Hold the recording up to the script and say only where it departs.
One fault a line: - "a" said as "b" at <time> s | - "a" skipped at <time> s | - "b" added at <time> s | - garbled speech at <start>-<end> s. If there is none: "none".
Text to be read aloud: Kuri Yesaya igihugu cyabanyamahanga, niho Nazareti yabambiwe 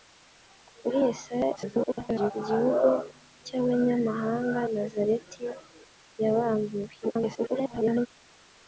- garbled speech at 1.6-2.3 s
- "niho" skipped at 4.6 s
- garbled speech at 7.0-8.1 s